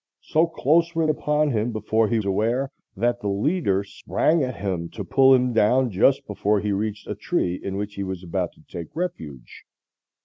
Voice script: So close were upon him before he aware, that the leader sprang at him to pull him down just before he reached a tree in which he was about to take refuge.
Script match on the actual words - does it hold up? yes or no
yes